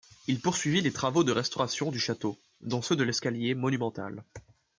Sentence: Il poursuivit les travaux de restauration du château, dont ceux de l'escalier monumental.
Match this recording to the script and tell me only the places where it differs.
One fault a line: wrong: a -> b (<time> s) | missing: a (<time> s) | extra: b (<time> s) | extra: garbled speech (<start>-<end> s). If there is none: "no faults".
no faults